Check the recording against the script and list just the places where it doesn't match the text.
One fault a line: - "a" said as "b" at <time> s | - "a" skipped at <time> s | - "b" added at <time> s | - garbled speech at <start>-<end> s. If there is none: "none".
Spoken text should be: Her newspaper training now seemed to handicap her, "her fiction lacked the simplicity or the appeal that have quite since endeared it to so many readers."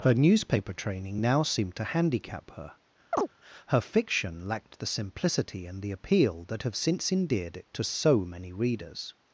- "or" said as "and" at 5.7 s
- "quite" skipped at 6.8 s